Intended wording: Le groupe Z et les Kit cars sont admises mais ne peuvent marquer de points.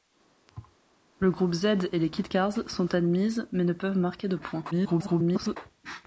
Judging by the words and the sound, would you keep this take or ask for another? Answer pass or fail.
fail